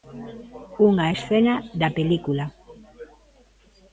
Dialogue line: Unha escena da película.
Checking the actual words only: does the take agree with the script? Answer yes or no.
yes